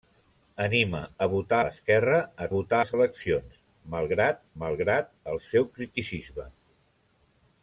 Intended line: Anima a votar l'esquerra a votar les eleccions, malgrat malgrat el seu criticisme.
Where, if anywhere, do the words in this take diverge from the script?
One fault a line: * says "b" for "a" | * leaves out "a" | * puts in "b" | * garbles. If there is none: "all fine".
all fine